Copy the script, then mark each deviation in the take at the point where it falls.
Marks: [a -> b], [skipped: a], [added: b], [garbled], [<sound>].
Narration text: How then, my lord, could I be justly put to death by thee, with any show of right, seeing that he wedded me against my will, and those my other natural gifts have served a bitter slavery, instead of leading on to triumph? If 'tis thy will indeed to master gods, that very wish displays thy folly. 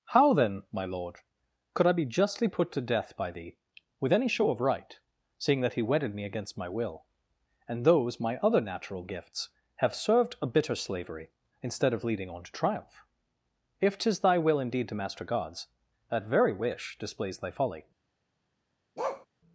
How then, my lord, could I be justly put to death by thee, with any show of right, seeing that he wedded me against my will, and those my other natural gifts have served a bitter slavery, instead of leading on to triumph? If 'tis thy will indeed to master gods, that very wish displays thy folly. [bark]